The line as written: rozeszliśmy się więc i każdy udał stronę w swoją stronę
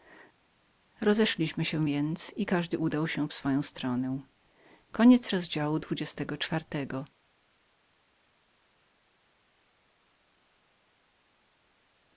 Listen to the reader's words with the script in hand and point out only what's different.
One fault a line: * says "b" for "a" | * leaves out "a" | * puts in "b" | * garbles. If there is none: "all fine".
* says "się" for "stronę"